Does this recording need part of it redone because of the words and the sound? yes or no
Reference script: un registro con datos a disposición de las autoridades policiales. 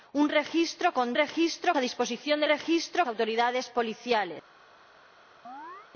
yes